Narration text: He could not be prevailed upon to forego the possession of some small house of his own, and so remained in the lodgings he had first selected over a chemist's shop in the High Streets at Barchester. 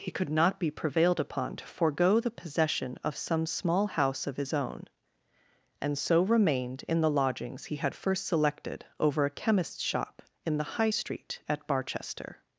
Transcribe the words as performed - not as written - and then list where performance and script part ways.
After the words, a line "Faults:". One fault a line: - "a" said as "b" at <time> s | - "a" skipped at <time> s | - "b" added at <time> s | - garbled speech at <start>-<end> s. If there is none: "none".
He could not be prevailed upon to forego the possession of some small house of his own, and so remained in the lodgings he had first selected over a chemist's shop in the High Street at Barchester.
Faults:
- "Streets" said as "Street" at 10.9 s